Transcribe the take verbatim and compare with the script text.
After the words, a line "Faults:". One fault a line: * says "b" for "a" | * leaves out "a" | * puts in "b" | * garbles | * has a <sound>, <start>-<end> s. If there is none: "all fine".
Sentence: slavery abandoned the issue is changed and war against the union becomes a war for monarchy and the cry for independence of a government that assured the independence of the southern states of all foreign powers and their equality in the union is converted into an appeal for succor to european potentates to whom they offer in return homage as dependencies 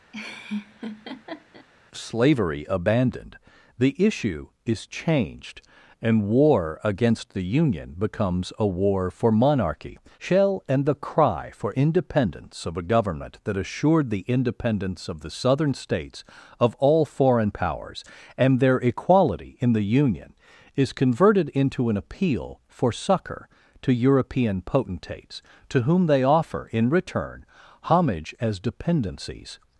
slavery abandoned the issue is changed and war against the union becomes a war for monarchy shell and the cry for independence of a government that assured the independence of the southern states of all foreign powers and their equality in the union is converted into an appeal for succor to european potentates to whom they offer in return homage as dependencies
Faults:
* has a laugh, 0.1-1.7 s
* puts in "shell"